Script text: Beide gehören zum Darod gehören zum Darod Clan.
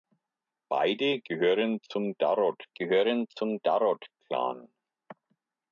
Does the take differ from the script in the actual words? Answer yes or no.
no